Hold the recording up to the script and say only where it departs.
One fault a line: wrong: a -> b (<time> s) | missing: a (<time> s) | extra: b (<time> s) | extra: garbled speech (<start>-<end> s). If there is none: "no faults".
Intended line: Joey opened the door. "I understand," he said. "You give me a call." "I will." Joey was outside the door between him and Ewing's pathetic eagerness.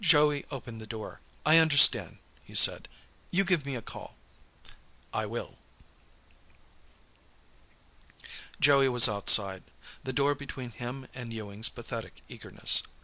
no faults